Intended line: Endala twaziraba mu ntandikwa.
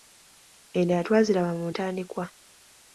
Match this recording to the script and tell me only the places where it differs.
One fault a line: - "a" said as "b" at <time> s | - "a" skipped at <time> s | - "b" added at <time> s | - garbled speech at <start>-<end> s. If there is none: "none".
none